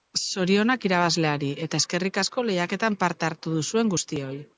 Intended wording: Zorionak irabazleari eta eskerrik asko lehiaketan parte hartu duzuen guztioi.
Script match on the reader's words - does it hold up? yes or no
yes